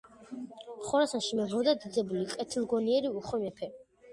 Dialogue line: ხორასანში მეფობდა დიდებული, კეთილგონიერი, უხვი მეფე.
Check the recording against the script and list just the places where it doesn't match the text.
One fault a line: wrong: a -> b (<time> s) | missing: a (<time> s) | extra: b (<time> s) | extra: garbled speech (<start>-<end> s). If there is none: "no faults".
no faults